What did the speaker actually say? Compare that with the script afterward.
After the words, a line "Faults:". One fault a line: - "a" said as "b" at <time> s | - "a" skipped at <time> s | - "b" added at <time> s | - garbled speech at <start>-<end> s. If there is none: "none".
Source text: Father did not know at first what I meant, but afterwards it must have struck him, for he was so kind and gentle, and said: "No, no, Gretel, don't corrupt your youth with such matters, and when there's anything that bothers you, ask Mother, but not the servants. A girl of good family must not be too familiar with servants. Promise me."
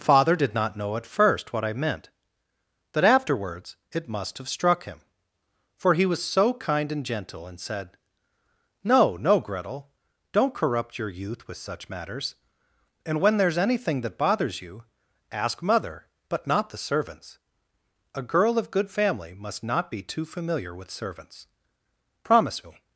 Father did not know at first what I meant, that afterwards it must have struck him, for he was so kind and gentle, and said: "No, no, Gretel, don't corrupt your youth with such matters, and when there's anything that bothers you, ask Mother, but not the servants. A girl of good family must not be too familiar with servants. Promise me."
Faults:
- "but" said as "that" at 2.9 s